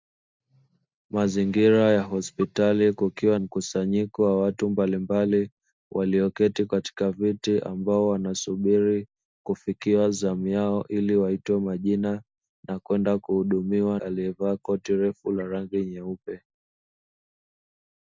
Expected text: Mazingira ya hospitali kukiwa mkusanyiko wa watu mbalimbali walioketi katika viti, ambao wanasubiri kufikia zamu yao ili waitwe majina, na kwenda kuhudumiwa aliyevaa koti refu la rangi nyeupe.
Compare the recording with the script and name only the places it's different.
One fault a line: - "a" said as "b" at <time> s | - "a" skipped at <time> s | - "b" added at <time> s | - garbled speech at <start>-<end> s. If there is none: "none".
none